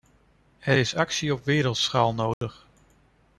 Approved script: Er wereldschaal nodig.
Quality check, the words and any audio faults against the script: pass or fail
fail